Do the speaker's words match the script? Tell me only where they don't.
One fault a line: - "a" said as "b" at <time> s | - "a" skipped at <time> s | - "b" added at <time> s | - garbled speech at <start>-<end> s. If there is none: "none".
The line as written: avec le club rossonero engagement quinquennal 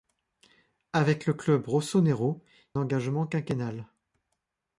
none